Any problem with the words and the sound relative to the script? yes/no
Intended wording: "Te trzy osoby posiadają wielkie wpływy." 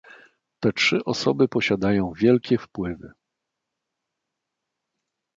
no